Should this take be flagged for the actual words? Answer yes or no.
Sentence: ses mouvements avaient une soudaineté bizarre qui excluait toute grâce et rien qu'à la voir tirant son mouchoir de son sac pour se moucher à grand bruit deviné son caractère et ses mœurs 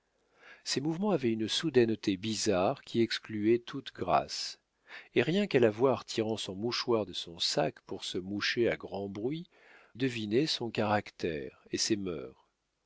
no